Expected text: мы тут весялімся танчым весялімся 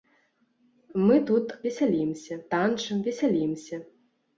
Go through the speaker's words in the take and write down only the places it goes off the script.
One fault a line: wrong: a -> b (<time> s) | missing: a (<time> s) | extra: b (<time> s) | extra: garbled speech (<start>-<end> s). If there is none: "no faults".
no faults